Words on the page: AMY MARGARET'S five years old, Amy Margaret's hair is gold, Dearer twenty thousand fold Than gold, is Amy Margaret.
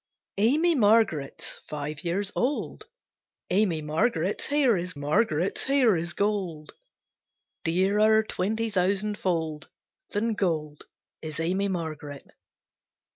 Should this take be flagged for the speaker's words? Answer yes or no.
yes